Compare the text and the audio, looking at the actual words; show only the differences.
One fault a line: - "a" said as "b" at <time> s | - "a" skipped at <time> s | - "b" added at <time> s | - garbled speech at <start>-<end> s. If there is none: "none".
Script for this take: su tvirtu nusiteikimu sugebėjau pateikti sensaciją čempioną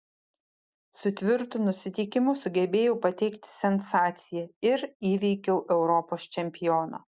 - "ir įveikiau europos" added at 4.7 s